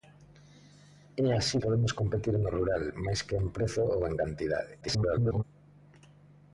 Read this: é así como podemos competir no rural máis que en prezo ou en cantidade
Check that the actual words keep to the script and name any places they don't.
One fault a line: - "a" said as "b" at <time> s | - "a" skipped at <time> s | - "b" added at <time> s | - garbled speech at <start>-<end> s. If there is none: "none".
- "como" skipped at 1.6 s
- garbled speech at 4.8-5.4 s